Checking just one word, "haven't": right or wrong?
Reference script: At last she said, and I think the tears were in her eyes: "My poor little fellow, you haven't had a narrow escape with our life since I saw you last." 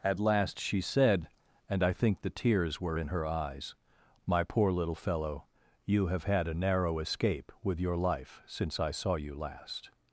wrong